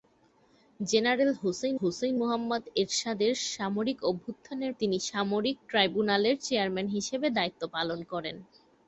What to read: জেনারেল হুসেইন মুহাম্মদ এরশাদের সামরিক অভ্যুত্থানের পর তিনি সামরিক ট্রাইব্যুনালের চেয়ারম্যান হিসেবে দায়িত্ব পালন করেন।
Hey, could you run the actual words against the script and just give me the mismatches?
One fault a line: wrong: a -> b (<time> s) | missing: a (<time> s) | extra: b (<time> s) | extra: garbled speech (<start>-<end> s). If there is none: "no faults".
extra: হুসেইন (1.8 s)
missing: পর (4.7 s)